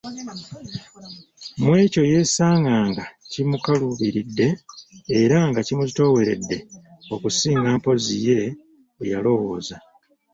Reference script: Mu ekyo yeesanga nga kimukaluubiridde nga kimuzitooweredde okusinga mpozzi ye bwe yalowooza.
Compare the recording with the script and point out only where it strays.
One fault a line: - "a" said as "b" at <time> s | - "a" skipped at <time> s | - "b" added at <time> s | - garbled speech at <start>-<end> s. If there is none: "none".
- "era" added at 5.2 s